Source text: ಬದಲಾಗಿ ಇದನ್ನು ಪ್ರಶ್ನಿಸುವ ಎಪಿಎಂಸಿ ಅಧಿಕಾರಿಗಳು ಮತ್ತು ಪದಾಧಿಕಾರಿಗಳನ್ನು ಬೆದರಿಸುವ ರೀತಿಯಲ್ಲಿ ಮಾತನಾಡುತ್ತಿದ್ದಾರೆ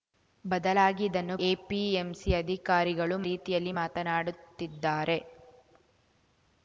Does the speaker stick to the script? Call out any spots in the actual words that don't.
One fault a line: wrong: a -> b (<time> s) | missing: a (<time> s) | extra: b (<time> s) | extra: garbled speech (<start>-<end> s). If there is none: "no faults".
missing: ಪ್ರಶ್ನಿಸುವ (1.4 s)
missing: ಮತ್ತು ಪದಾಧಿಕಾರಿಗಳನ್ನು ಬೆದರಿಸುವ (3.2 s)